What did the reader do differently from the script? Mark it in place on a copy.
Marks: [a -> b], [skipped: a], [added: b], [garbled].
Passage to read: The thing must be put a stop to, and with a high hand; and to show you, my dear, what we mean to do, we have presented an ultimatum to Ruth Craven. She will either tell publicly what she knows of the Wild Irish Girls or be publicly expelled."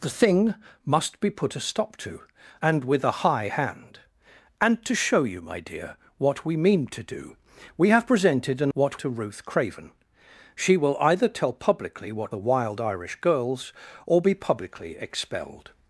The thing must be put a stop to, and with a high hand; and to show you, my dear, what we mean to do, we have presented an [ultimatum -> what] to Ruth Craven. She will either tell publicly what [skipped: she knows of] the Wild Irish Girls or be publicly expelled."